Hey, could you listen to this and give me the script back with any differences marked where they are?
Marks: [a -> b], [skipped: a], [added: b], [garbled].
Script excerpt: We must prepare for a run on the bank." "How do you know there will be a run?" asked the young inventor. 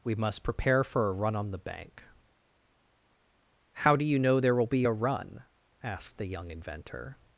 We must prepare for a run on the bank." "How do you know there will be a run?" asked the young inventor.